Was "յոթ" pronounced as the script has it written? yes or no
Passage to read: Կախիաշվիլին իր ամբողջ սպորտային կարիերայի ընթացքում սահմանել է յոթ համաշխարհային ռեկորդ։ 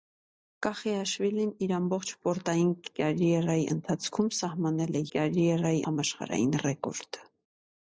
no